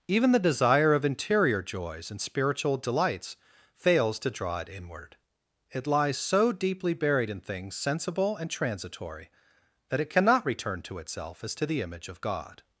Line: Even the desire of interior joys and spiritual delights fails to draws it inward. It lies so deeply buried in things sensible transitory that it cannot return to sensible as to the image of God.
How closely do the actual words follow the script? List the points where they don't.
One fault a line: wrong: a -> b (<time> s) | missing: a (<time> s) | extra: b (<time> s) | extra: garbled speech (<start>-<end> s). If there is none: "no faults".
wrong: draws -> draw (4.3 s)
extra: and (8.3 s)
wrong: sensible -> itself (11.0 s)